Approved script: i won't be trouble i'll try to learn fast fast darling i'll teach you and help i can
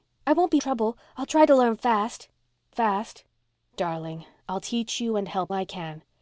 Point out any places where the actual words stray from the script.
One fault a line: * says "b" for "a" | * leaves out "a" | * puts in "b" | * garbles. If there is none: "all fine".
all fine